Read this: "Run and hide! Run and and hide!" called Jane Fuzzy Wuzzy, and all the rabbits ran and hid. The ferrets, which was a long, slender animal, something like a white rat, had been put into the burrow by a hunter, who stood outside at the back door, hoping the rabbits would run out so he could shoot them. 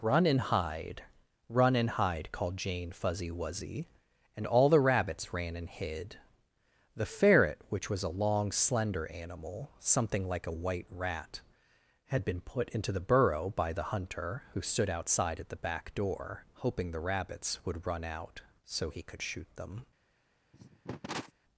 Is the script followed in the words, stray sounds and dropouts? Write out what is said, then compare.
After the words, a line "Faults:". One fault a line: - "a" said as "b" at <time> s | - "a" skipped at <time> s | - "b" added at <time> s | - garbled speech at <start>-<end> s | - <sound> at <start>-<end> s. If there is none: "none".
"Run and hide! Run and hide!" called Jane Fuzzy Wuzzy, and all the rabbits ran and hid. The ferret, which was a long, slender animal, something like a white rat, had been put into the burrow by the hunter, who stood outside at the back door, hoping the rabbits would run out so he could shoot them.
Faults:
- "and" skipped at 1.9 s
- "ferrets" said as "ferret" at 7.0 s
- "a" said as "the" at 13.7 s
- cough at 20.5-21.3 s